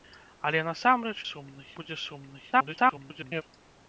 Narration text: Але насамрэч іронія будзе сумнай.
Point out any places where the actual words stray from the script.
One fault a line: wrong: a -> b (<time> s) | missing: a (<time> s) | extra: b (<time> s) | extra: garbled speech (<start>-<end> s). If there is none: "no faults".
wrong: іронія -> сумнай (1.3 s)
extra: garbled speech (2.5-3.4 s)